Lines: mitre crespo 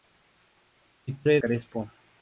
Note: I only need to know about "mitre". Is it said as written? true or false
true